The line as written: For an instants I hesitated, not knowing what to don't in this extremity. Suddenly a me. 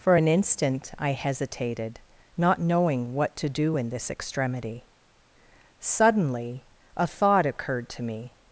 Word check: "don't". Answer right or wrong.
wrong